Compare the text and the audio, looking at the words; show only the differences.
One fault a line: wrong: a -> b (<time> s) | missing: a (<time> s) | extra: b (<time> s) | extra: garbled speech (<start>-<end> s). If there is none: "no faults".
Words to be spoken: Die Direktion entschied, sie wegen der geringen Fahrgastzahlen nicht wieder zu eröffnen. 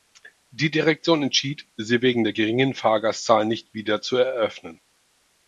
no faults